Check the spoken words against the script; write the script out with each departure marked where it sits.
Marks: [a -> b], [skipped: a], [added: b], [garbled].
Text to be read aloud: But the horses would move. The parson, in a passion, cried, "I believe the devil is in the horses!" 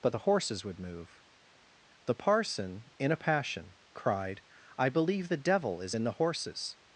But the horses would move. The parson, in a passion, cried, "I believe the devil is in the horses!"